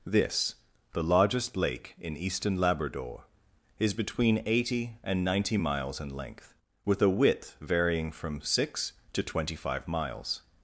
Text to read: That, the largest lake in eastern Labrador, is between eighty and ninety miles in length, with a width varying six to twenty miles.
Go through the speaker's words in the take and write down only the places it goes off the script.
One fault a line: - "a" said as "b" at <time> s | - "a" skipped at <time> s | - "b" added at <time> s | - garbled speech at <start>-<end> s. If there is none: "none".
- "That" said as "This" at 0.1 s
- "from" added at 8.1 s
- "five" added at 9.6 s